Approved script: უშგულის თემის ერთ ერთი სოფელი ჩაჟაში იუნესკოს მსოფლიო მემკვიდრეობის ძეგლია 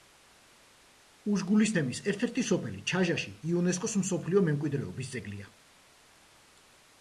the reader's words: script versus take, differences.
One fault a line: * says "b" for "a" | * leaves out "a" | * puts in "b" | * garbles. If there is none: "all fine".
all fine